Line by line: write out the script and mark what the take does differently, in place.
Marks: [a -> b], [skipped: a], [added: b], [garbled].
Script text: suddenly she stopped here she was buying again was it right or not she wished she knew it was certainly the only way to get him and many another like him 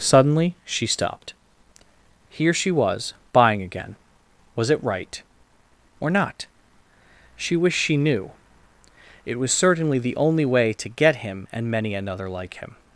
suddenly she stopped here she was buying again was it right or not she wished she knew it was certainly the only way to get him and many another like him